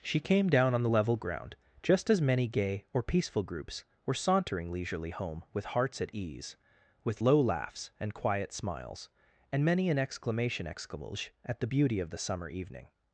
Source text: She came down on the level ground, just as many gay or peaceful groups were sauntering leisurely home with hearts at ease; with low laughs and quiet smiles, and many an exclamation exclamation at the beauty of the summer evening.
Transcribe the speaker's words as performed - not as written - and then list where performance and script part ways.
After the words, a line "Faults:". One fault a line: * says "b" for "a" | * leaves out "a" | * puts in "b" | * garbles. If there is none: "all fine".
She came down on the level ground, just as many gay or peaceful groups were sauntering leisurely home with hearts at ease; with low laughs and quiet smiles, and many an exclamation exclamation at the beauty of the summer evening.
Faults:
all fine